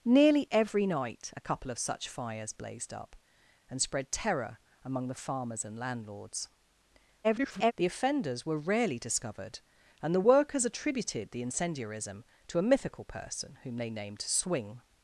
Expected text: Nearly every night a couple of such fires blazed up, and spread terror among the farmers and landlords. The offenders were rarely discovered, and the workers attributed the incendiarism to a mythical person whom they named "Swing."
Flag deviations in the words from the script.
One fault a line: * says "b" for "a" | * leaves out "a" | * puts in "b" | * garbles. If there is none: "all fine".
* garbles